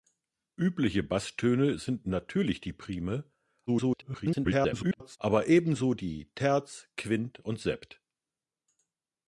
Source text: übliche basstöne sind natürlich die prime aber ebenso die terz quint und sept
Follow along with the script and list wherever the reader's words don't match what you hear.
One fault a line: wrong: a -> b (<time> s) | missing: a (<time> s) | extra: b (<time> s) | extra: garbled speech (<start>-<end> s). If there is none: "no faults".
extra: garbled speech (3.7-5.2 s)